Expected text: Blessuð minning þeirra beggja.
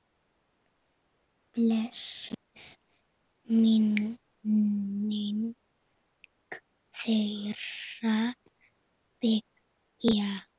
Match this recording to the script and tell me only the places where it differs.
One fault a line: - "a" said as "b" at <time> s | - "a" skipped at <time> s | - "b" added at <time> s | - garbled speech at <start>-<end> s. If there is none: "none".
none